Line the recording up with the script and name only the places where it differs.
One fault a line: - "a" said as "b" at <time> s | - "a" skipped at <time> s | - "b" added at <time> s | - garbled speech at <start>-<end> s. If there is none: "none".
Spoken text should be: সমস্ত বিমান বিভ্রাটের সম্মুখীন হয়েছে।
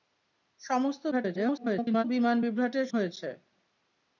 - garbled speech at 1.1-2.0 s
- "সম্মুখীন" skipped at 2.9 s